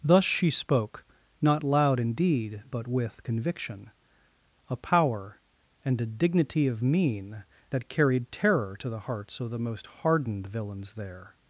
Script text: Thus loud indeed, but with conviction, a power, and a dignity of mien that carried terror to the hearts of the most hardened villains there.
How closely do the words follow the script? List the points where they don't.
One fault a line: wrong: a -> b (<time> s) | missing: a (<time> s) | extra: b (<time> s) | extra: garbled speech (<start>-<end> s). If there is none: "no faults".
extra: she spoke not (0.2 s)